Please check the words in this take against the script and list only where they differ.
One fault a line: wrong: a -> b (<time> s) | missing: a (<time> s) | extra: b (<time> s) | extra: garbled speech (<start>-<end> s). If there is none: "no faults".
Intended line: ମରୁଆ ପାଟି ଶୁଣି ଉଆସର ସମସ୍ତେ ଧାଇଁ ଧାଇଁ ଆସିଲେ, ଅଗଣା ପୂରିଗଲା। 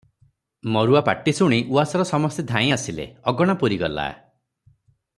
missing: ଧାଇଁ (2.7 s)